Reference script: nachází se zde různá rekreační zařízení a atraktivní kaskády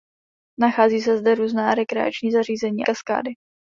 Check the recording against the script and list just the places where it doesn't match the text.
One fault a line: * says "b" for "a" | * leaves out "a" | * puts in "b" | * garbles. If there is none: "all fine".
* leaves out "a atraktivní"